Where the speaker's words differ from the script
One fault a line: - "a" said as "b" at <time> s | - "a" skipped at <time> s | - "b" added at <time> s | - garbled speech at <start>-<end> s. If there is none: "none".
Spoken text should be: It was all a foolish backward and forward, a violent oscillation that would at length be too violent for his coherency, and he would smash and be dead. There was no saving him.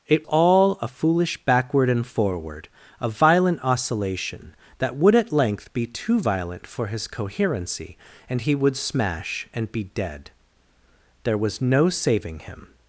- "was" skipped at 0.3 s